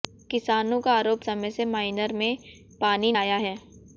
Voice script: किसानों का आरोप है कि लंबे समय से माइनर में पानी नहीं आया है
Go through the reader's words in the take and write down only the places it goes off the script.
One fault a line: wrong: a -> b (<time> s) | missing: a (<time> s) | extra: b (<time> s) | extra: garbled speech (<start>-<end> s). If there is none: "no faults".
missing: है कि लंबे (1.2 s)
missing: नहीं (3.1 s)